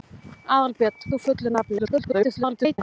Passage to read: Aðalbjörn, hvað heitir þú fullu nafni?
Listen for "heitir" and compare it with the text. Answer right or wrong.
wrong